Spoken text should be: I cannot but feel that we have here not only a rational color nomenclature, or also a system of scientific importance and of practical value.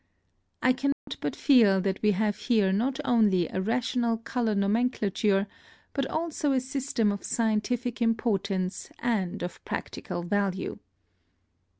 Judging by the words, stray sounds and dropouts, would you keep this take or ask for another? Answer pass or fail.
fail